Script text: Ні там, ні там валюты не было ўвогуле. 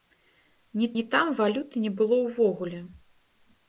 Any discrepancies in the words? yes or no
yes